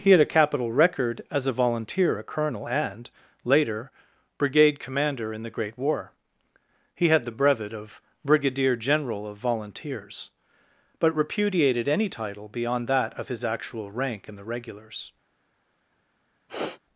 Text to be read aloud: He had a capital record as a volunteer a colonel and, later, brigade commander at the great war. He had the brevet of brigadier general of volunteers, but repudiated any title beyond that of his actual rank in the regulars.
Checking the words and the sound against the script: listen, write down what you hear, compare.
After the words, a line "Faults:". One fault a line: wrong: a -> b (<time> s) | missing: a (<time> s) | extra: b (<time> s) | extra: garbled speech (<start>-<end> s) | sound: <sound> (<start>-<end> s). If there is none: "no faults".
He had a capital record as a volunteer a colonel and, later, brigade commander in the great war. He had the brevet of brigadier general of volunteers, but repudiated any title beyond that of his actual rank in the regulars.
Faults:
wrong: at -> in (5.3 s)
sound: sniff (16.5-16.8 s)